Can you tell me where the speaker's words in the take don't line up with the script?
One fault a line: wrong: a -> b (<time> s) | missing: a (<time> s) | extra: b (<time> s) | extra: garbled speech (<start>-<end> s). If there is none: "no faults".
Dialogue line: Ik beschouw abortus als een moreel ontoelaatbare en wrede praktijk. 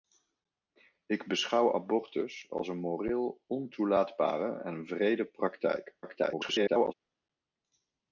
extra: garbled speech (6.0-6.9 s)